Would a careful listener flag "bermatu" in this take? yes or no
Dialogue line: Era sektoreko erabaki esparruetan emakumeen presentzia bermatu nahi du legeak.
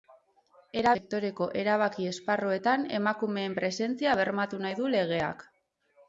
no